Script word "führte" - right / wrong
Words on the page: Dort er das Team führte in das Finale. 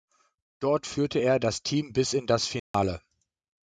wrong